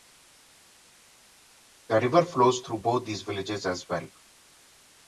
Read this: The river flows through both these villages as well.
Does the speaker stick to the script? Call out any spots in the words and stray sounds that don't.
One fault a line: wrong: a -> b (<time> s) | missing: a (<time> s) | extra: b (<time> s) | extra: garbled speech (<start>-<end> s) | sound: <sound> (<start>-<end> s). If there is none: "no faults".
no faults